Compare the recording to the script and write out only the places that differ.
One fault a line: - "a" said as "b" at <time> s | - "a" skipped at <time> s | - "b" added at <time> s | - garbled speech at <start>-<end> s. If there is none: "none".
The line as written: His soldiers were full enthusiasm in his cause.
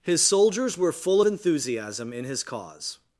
none